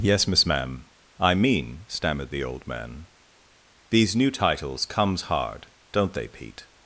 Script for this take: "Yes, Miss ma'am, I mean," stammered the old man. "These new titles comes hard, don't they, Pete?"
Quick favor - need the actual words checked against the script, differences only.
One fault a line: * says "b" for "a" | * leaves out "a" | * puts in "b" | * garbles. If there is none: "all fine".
all fine